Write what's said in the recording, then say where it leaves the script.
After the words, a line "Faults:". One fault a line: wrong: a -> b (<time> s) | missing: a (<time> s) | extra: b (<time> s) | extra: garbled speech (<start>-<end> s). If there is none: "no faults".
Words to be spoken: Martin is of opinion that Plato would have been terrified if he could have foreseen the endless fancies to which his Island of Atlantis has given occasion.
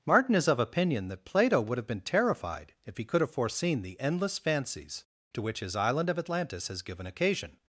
Martin is of opinion that Plato would have been terrified if he could have foreseen the endless fancies to which his Island of Atlantis has given occasion.
Faults:
no faults